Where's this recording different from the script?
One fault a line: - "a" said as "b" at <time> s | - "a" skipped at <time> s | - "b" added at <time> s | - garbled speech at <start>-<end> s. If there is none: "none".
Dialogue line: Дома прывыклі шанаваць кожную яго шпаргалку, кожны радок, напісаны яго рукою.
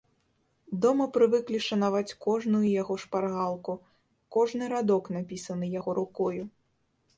none